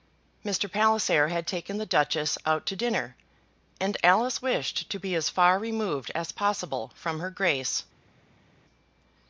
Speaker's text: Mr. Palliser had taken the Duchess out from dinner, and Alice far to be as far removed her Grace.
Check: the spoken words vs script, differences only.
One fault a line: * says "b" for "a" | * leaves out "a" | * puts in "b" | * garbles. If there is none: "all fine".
* says "to" for "from"
* says "wished" for "far"
* puts in "as possible from"